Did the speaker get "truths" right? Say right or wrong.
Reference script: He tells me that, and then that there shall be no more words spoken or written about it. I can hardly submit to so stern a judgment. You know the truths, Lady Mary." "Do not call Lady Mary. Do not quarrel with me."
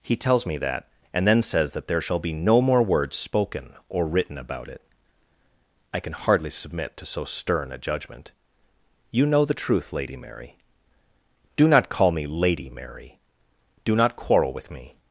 wrong